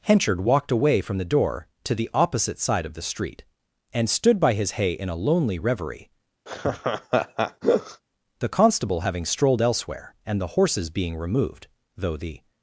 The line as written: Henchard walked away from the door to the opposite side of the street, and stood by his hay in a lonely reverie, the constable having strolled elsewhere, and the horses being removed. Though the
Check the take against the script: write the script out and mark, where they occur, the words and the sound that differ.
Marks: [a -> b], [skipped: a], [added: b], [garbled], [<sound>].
Henchard walked away from the door to the opposite side of the street, and stood by his hay in a lonely reverie, [laugh] the constable having strolled elsewhere, and the horses being removed. Though the